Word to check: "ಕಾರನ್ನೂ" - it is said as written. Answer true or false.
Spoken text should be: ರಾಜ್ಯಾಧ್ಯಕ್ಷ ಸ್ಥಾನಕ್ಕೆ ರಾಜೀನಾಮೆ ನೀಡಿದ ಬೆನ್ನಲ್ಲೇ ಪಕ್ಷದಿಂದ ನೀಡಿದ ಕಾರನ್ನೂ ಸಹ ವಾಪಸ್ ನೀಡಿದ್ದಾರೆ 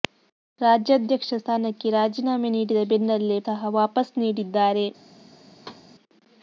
false